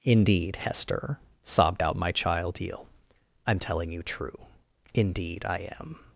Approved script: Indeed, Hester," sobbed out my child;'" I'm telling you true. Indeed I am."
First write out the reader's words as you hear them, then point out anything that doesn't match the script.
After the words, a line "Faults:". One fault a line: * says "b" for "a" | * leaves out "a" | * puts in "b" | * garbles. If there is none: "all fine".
Indeed, Hester," sobbed out my child;'" eel I'm telling you true. Indeed I am."
Faults:
* puts in "eel"